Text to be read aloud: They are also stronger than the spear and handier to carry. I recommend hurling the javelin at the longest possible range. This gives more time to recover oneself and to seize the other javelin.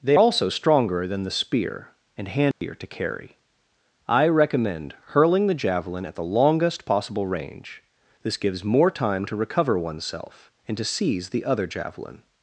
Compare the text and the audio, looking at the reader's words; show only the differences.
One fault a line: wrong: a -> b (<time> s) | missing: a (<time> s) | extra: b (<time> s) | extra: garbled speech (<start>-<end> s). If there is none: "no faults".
missing: are (0.2 s)